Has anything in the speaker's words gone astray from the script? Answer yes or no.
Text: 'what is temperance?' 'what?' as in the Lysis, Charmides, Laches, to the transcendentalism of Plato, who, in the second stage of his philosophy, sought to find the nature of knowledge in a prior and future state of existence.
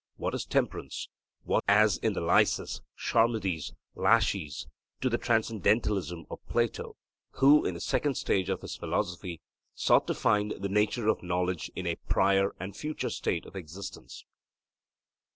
no